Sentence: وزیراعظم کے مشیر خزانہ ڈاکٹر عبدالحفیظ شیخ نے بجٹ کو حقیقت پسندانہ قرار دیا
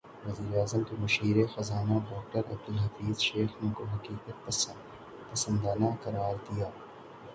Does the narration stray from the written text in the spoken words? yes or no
yes